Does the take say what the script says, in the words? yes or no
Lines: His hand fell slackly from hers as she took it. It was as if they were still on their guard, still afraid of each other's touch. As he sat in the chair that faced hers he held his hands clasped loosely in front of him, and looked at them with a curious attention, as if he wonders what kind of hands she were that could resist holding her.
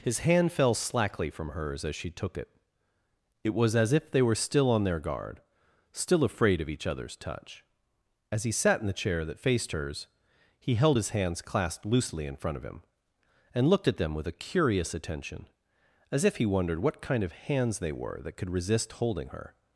no